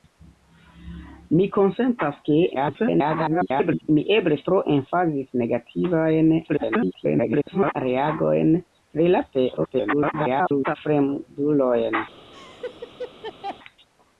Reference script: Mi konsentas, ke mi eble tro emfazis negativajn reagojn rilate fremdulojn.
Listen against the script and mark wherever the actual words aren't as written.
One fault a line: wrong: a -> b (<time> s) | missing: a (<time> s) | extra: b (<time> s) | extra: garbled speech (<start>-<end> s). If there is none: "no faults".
extra: garbled speech (2.5-3.9 s)
extra: garbled speech (6.5-7.8 s)
extra: garbled speech (9.6-10.8 s)